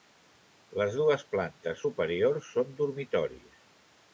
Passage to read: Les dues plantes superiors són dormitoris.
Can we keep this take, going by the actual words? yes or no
yes